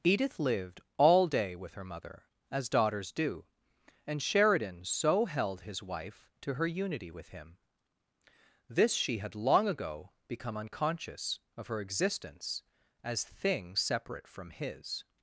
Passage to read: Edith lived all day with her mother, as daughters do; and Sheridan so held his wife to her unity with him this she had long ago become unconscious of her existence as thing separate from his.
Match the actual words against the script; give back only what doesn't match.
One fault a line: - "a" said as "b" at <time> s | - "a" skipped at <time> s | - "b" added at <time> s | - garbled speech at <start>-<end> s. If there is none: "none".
none